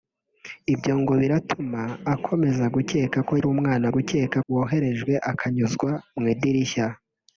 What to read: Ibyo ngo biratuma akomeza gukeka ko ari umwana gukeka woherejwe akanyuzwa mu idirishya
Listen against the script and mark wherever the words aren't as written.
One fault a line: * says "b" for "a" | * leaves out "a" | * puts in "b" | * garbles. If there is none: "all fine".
all fine